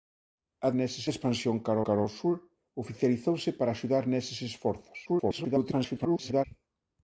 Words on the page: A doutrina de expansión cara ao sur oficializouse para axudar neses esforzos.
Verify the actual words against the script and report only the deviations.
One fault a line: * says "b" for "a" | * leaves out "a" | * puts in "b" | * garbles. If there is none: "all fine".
* says "neses" for "doutrina"
* puts in "cara"
* garbles